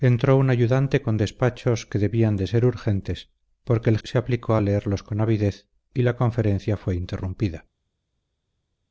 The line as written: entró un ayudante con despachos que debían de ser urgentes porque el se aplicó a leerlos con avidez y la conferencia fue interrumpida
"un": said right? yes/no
yes